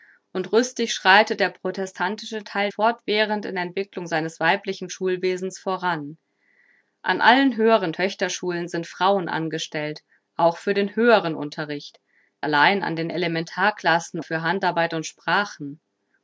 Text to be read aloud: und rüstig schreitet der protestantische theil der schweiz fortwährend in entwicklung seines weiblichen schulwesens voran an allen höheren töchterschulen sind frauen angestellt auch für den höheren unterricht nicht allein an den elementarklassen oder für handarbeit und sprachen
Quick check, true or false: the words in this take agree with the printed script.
false